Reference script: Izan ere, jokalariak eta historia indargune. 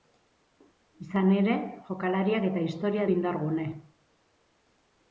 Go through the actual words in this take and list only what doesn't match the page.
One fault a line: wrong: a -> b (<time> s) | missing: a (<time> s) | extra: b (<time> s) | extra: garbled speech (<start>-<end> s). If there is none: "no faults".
no faults